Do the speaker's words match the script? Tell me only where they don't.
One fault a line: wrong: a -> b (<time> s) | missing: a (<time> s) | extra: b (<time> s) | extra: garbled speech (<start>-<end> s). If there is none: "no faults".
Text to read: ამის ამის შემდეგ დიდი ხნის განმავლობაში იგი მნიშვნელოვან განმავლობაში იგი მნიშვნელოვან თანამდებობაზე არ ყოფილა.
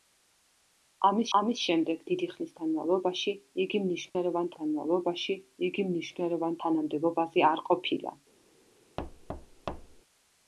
no faults